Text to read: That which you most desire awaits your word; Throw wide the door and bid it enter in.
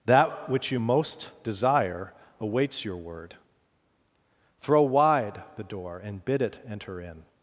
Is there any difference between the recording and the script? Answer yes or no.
no